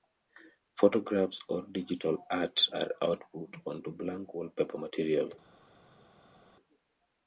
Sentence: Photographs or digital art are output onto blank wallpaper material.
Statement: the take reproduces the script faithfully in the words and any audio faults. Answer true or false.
true